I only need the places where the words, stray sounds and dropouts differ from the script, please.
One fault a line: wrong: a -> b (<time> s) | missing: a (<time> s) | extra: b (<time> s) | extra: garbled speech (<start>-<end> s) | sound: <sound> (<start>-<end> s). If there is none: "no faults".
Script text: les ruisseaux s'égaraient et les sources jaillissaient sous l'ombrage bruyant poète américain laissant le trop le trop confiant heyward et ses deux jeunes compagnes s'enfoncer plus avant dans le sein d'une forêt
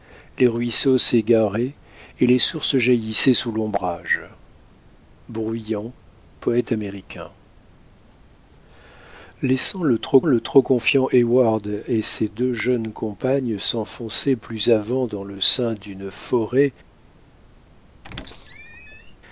sound: squeak (18.0-19.2 s)